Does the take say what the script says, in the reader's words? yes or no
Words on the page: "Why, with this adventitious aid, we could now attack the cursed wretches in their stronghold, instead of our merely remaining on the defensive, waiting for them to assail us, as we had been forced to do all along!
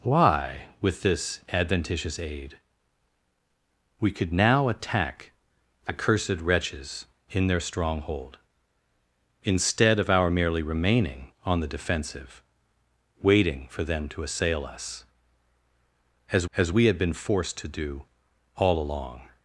no